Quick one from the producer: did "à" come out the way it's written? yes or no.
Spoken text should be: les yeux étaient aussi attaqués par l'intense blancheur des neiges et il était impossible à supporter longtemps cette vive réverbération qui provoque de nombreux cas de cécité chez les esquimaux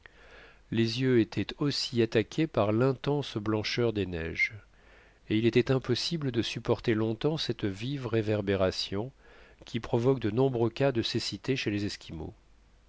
no